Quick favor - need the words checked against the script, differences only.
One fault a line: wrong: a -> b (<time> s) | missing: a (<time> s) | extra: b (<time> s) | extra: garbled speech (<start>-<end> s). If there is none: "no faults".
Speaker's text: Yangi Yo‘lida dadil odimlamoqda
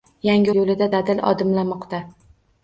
no faults